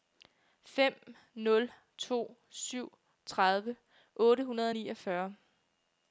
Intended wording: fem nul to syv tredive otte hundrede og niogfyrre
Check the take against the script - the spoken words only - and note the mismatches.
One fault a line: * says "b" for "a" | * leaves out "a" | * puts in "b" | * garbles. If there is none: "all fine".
all fine